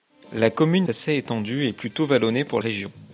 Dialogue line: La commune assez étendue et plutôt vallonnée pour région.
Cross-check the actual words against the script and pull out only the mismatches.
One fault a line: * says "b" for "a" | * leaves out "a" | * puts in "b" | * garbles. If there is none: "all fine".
all fine